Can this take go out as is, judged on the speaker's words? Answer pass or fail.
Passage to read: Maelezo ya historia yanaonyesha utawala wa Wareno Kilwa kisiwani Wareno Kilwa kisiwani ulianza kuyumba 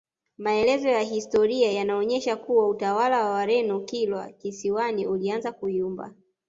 fail